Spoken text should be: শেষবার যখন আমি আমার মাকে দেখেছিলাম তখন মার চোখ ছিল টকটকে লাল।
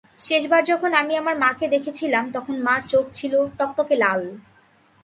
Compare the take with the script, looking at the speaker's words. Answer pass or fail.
pass